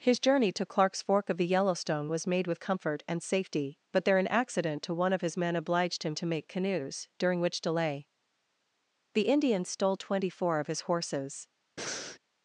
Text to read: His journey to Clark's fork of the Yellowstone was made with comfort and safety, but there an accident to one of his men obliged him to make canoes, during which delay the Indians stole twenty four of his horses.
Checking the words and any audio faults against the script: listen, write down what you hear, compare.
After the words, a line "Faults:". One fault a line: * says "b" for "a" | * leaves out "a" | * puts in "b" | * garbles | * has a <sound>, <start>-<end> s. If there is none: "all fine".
His journey to Clark's fork of the Yellowstone was made with comfort and safety, but there an accident to one of his men obliged him to make canoes, during which delay the Indians stole twenty four of his horses.
Faults:
* has a breath, 11.8-12.2 s